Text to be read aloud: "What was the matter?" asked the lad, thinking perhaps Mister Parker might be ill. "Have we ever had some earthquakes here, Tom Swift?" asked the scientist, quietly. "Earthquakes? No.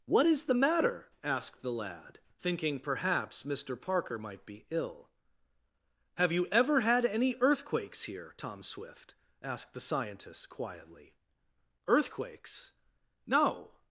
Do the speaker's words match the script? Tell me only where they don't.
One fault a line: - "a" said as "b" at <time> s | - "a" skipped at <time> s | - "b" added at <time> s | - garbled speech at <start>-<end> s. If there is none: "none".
- "was" said as "is" at 0.2 s
- "we" said as "you" at 6.3 s
- "some" said as "any" at 7.0 s